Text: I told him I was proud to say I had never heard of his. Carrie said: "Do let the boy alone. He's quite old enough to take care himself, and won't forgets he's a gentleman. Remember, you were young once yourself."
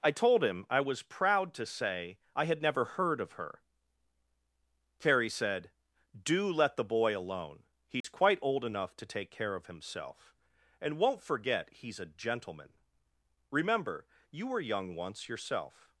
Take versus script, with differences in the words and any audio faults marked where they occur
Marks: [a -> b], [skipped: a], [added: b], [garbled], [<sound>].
I told him I was proud to say I had never heard of [his. -> her] Carrie said: "Do let the boy alone. He's [dropout] quite old enough to take care [added: of] himself, and won't [forgets -> forget] he's a gentleman. Remember, you were young once yourself."